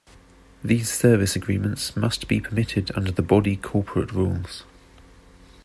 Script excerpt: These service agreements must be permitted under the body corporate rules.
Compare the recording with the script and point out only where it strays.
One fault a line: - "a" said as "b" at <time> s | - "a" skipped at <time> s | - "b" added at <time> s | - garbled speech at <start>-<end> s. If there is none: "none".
none